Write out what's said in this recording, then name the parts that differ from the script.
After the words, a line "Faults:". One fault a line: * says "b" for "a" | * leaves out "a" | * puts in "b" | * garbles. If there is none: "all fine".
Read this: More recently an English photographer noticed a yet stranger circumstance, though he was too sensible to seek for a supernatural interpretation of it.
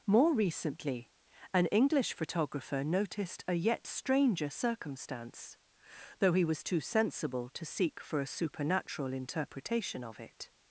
More recently an English photographer noticed a yet stranger circumstance, though he was too sensible to seek for a supernatural interpretation of it.
Faults:
all fine